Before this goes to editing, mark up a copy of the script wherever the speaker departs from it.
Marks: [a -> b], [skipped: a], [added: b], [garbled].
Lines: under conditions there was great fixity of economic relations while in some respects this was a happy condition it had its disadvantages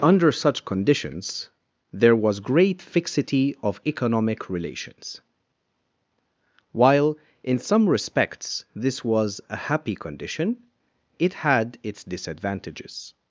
under [added: such] conditions there was great fixity of economic relations while in some respects this was a happy condition it had its disadvantages